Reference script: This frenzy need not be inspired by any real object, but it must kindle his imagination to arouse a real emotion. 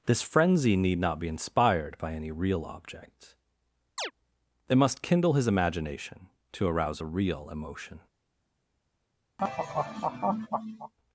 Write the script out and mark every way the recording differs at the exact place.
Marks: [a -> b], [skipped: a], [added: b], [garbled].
This frenzy need not be inspired by any real object, [skipped: but] it must kindle his imagination to arouse a real emotion.